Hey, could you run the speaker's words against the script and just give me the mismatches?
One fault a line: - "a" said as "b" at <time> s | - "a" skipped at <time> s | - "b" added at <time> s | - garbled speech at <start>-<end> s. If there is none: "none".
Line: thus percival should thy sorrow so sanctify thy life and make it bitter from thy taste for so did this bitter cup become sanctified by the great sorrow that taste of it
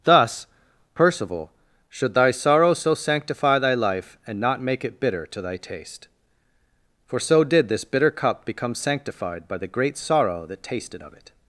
- "not" added at 4.4 s
- "from" said as "to" at 5.3 s
- "taste" said as "tasted" at 10.6 s